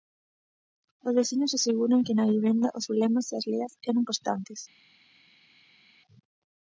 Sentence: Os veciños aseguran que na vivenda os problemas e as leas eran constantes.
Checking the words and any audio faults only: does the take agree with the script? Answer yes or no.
yes